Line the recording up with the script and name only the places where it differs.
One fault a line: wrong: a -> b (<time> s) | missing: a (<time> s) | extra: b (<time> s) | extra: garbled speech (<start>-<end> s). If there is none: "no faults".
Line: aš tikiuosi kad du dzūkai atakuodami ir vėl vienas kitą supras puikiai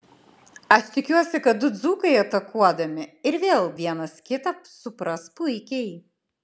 no faults